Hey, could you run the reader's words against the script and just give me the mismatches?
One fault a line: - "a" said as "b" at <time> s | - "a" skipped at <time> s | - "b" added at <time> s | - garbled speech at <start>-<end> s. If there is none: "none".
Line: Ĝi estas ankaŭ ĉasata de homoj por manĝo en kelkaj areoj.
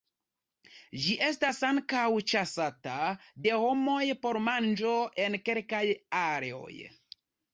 none